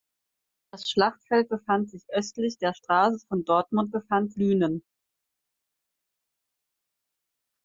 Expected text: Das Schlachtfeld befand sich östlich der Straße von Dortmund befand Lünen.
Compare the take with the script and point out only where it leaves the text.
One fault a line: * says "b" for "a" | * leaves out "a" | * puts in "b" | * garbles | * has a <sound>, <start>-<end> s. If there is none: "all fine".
all fine